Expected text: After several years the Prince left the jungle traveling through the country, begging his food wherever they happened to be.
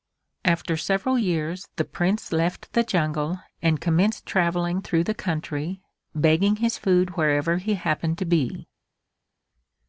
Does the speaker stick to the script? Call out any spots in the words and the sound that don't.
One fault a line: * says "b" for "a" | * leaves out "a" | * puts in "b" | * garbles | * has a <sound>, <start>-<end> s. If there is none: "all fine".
* puts in "and commenced"
* says "he" for "they"